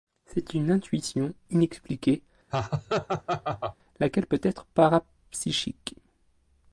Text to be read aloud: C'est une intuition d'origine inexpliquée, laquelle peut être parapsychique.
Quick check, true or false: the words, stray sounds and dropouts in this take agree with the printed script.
false